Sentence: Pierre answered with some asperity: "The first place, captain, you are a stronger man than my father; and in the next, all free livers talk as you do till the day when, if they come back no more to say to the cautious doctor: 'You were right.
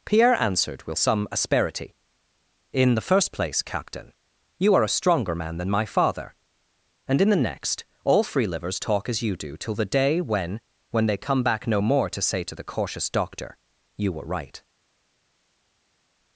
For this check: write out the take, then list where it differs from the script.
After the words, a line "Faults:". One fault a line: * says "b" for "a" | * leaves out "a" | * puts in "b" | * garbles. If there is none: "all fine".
Pierre answered with some asperity: "In the first place, captain, you are a stronger man than my father; and in the next, all free livers talk as you do till the day when, when they come back no more to say to the cautious doctor: 'You were right.
Faults:
* puts in "In"
* says "when" for "if"